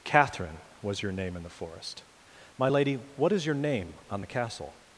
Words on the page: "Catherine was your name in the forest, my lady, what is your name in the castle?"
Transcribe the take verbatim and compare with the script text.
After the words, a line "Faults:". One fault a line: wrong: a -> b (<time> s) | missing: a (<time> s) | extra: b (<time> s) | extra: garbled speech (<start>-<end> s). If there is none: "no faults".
"Catherine was your name in the forest, my lady, what is your name on the castle?"
Faults:
wrong: in -> on (4.1 s)